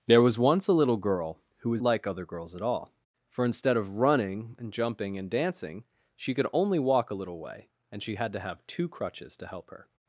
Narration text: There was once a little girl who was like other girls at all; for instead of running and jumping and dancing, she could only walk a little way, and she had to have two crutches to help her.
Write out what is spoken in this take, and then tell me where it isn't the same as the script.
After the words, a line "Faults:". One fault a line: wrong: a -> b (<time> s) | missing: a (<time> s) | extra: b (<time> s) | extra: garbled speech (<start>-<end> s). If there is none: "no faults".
There was once a little girl who was like other girls at all; for instead of running and jumping and dancing, she could only walk a little way, and she had to have two crutches to help her.
Faults:
no faults